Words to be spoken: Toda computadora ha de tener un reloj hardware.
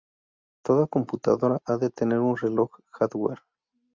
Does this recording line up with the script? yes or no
yes